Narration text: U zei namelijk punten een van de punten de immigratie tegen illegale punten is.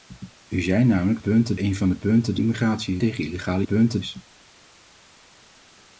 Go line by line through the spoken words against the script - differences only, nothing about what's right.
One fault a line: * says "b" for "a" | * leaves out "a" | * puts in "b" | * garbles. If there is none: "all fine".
all fine